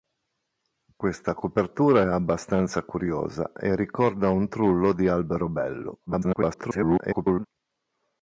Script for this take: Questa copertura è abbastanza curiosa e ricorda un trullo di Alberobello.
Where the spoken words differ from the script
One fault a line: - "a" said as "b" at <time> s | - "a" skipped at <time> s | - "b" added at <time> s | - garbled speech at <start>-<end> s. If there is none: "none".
- garbled speech at 6.1-7.5 s